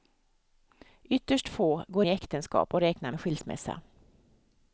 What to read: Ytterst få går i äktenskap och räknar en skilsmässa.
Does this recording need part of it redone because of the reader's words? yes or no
no